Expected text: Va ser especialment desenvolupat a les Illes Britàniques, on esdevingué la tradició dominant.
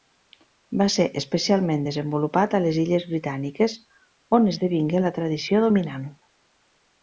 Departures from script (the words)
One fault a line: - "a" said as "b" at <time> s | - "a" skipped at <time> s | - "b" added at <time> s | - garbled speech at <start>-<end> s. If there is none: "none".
none